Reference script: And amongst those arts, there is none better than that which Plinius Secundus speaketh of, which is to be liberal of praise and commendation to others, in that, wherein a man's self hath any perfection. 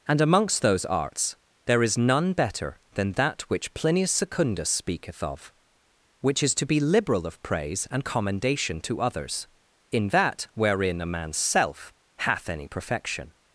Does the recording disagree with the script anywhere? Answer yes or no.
no